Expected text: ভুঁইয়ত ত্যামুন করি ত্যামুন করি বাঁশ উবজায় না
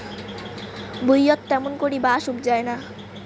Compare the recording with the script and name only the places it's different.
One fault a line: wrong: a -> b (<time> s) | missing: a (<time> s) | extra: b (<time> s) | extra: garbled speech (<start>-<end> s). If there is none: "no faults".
missing: ত্যামুন করি (2.0 s)